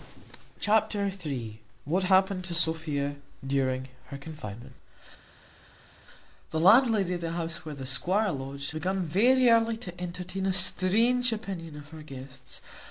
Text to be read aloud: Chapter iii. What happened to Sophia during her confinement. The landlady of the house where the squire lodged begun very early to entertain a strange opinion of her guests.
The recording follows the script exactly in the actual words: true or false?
true